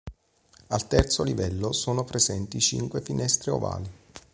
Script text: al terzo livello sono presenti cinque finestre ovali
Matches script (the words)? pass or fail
pass